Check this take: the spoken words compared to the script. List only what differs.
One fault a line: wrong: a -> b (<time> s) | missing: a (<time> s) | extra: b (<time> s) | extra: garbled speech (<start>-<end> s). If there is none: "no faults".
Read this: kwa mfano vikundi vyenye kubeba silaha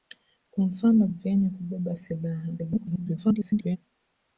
missing: vikundi (1.1 s)
extra: garbled speech (2.6-3.8 s)